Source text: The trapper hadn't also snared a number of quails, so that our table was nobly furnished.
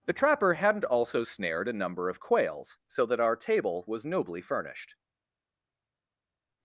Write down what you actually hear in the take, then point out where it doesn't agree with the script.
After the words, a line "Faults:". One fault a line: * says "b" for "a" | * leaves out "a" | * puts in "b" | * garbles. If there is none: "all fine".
The trapper hadn't also snared a number of quails, so that our table was nobly furnished.
Faults:
all fine